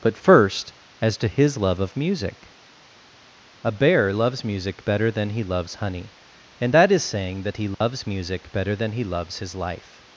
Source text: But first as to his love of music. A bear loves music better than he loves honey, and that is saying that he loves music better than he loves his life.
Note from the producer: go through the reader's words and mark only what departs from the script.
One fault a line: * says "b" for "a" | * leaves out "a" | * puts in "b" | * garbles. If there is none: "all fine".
all fine